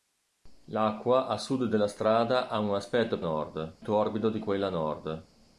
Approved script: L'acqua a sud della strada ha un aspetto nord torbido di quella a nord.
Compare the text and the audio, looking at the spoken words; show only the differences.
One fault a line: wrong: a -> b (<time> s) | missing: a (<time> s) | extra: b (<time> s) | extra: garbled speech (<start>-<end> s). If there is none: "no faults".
no faults